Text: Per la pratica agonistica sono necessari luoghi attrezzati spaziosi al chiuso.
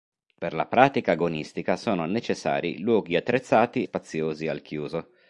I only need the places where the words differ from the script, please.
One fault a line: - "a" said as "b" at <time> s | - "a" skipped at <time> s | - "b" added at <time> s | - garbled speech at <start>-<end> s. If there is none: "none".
none